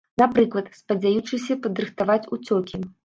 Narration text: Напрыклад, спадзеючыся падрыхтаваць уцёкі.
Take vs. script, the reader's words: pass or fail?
pass